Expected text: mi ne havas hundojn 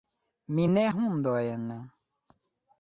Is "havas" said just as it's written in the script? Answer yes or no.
no